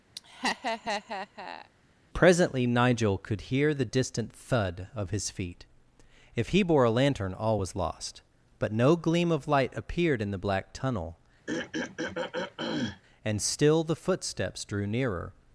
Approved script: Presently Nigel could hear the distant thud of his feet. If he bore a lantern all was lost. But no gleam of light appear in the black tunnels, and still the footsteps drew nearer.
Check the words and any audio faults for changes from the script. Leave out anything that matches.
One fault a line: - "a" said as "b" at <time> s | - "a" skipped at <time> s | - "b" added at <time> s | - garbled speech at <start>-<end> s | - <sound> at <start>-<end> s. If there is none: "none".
- laugh at 0.1-1.7 s
- "appear" said as "appeared" at 9.8 s
- "tunnels" said as "tunnel" at 10.7 s
- throat clearing at 11.5-13.0 s